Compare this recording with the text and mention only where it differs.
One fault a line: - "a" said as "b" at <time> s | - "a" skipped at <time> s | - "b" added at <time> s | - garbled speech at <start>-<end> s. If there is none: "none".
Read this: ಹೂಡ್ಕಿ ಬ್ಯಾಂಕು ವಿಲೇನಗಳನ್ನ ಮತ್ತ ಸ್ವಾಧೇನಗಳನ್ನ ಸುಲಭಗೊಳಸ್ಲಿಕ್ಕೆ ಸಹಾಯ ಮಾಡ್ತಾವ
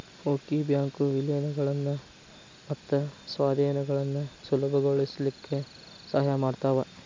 none